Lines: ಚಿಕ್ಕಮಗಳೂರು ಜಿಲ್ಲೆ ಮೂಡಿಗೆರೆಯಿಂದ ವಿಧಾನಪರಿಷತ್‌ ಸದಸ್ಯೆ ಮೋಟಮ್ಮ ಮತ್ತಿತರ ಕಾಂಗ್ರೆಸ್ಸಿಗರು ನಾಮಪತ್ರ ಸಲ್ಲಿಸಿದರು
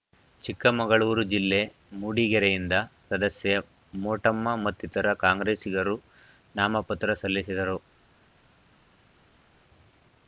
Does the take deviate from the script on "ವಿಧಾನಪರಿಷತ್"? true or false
true